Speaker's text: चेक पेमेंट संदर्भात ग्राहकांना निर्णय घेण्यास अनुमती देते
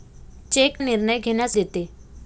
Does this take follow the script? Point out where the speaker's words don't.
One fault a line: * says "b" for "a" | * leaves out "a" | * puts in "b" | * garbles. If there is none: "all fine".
* leaves out "पेमेंट संदर्भात ग्राहकांना"
* leaves out "अनुमती"